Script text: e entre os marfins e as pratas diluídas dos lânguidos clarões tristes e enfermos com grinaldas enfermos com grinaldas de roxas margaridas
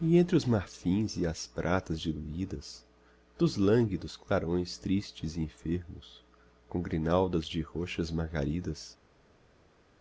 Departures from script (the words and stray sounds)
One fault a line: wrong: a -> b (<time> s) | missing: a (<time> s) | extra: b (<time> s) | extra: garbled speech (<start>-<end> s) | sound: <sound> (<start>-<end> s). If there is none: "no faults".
missing: enfermos com grinaldas (7.5 s)